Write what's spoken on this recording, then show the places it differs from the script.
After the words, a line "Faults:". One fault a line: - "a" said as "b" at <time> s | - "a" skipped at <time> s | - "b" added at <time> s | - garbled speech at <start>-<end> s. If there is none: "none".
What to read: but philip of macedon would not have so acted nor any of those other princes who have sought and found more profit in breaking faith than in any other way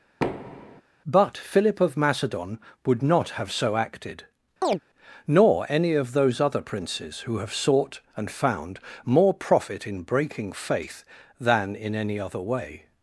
but philip of macedon would not have so acted nor any of those other princes who have sought and found more profit in breaking faith than in any other way
Faults:
none